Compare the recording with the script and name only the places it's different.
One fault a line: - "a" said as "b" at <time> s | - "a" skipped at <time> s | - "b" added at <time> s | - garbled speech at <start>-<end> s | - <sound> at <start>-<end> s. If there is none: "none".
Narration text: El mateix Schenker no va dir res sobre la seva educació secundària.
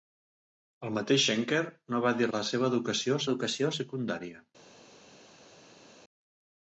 - "res sobre" skipped at 2.3 s
- "educació" added at 3.3 s